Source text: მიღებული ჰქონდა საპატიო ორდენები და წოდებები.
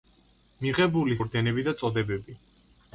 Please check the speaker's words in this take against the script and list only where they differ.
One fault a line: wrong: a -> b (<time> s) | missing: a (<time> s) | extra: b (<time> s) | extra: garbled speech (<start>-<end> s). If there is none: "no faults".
missing: ჰქონდა საპატიო (1.2 s)